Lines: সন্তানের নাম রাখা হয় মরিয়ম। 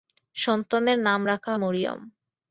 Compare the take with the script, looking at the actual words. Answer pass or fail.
fail